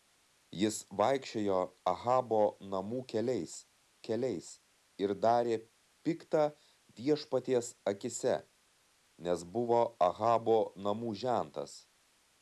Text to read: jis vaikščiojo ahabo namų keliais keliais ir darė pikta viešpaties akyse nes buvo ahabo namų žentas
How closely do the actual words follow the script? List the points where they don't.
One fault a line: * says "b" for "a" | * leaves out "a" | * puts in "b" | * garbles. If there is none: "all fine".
all fine